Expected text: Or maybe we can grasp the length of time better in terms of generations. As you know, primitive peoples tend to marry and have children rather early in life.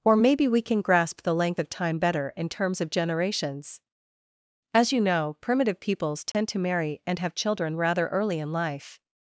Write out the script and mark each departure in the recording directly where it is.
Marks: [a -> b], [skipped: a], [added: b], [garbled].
Or maybe we can grasp the length of time better in terms of generations. As you know, primitive peoples tend to marry and have children rather early in life.